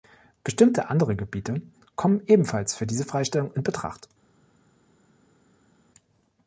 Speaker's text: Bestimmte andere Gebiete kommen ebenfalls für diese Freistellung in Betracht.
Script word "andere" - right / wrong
right